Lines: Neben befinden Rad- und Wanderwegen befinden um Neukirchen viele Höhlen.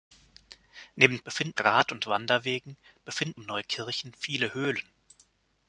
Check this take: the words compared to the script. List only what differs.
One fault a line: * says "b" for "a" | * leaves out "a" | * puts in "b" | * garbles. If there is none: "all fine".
all fine